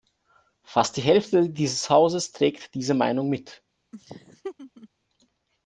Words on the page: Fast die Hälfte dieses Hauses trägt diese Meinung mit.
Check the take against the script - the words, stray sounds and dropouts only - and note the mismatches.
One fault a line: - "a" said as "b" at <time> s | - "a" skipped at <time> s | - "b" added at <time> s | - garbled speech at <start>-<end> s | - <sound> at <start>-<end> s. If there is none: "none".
- laugh at 3.9-4.9 s